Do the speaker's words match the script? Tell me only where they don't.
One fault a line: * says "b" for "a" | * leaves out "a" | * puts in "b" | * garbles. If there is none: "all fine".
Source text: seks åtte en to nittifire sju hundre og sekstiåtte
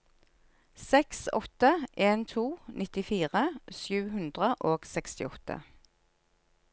all fine